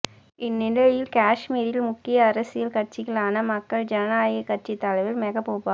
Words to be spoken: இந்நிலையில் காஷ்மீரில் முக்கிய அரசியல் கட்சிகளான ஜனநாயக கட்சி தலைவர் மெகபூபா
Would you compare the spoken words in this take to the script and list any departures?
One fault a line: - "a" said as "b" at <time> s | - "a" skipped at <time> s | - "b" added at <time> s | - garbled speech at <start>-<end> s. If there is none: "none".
- "மக்கள்" added at 3.5 s